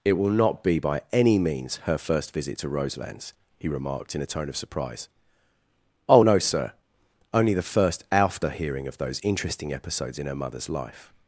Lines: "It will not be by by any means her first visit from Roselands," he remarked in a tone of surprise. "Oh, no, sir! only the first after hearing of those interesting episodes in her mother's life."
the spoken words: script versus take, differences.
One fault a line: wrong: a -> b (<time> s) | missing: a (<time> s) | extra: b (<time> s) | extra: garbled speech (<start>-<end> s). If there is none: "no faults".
missing: by (1.0 s)
wrong: from -> to (2.6 s)